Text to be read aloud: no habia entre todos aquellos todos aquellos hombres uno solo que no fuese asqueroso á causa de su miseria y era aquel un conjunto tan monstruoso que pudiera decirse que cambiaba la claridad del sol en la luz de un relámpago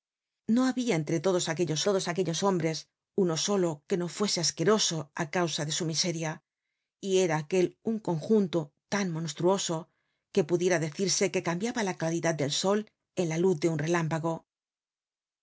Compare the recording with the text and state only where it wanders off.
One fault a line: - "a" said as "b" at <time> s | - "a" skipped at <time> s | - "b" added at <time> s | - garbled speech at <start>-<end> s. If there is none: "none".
none